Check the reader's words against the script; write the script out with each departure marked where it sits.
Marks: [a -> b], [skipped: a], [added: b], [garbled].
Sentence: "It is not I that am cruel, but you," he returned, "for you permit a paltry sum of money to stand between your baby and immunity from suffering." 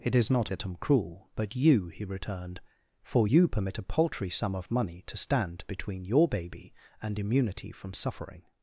"It is not [skipped: I] that am cruel, but you," he returned, "for you permit a paltry sum of money to stand between your baby and immunity from suffering."